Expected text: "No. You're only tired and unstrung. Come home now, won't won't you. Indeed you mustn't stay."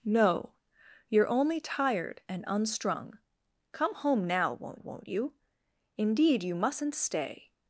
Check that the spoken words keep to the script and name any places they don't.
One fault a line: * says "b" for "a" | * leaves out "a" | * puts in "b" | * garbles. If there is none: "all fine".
all fine